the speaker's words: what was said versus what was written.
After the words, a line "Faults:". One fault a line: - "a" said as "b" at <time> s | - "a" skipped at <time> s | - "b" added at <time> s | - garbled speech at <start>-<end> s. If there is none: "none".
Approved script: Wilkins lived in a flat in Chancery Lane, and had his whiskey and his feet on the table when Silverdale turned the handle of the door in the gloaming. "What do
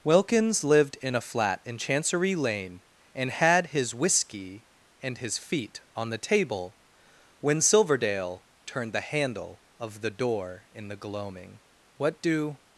Wilkins lived in a flat in Chancery Lane, and had his whiskey and his feet on the table when Silverdale turned the handle of the door in the gloaming. "What do
Faults:
none